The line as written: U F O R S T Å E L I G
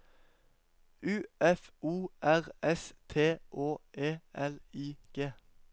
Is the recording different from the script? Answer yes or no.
no